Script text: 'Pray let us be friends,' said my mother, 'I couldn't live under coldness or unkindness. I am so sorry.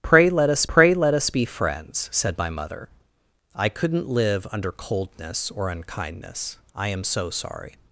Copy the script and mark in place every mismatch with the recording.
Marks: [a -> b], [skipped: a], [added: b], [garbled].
'Pray let us [added: pray let us] be friends,' said my mother, 'I couldn't live under coldness or unkindness. I am so sorry.